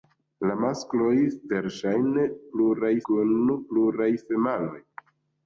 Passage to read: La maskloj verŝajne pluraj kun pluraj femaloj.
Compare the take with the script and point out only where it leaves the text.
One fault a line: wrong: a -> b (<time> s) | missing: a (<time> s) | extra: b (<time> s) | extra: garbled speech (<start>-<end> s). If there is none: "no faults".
no faults